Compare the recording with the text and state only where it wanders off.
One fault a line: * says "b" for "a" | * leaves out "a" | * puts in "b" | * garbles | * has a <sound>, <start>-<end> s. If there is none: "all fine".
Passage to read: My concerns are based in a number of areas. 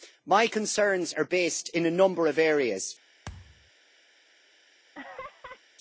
* has a thud, 3.3-3.7 s
* has a laugh, 4.9-5.6 s